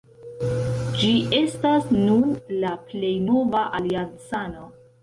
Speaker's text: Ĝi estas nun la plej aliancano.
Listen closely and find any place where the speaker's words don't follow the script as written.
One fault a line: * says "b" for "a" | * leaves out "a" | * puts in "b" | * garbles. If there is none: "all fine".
* puts in "nova"